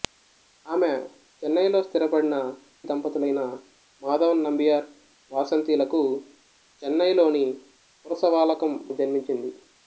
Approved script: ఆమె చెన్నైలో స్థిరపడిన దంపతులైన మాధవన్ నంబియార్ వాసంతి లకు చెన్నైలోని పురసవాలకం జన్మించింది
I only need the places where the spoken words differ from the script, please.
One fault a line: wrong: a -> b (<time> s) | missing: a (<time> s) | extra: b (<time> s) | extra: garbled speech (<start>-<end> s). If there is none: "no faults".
no faults